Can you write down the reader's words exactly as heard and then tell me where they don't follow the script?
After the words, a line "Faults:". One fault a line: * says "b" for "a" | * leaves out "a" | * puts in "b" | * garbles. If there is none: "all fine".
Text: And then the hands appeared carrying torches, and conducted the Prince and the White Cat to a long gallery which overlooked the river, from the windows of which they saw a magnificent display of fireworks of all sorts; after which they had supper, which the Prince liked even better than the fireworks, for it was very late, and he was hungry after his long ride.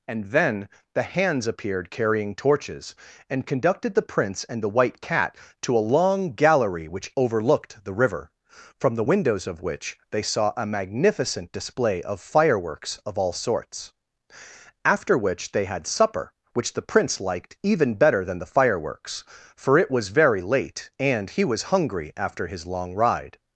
And then the hands appeared carrying torches, and conducted the Prince and the White Cat to a long gallery which overlooked the river, from the windows of which they saw a magnificent display of fireworks of all sorts; after which they had supper, which the Prince liked even better than the fireworks, for it was very late, and he was hungry after his long ride.
Faults:
all fine